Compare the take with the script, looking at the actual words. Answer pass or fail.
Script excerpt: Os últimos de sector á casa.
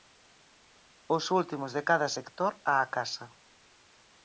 fail